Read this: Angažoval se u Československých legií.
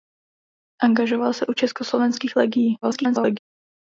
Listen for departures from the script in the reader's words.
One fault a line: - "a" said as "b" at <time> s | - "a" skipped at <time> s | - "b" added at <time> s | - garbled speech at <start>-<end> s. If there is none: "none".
- garbled speech at 2.8-3.4 s